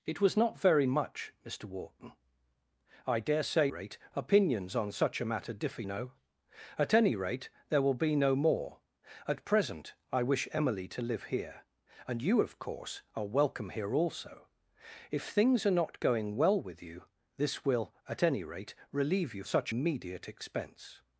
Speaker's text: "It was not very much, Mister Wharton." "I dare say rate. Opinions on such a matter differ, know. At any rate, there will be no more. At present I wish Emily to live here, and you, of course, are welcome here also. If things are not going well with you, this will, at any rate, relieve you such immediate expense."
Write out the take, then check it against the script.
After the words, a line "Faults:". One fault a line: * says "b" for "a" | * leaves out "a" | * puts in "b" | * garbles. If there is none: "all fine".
"It was not very much, Mister Wharton." "I dare say rate. Opinions on such a matter differ, know. At any rate, there will be no more. At present I wish Emily to live here, and you, of course, are welcome here also. If things are not going well with you, this will, at any rate, relieve you such immediate expense."
Faults:
all fine